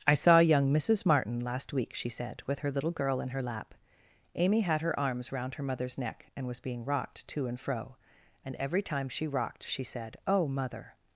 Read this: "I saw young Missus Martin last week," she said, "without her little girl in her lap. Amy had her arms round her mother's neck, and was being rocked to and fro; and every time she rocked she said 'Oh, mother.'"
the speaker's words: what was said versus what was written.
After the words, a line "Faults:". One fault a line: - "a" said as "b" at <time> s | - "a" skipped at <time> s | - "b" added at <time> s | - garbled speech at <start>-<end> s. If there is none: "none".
"I saw young Missus Martin last week," she said, "with her little girl in her lap. Amy had her arms round her mother's neck, and was being rocked to and fro; and every time she rocked she said 'Oh, mother.'"
Faults:
- "without" said as "with" at 2.5 s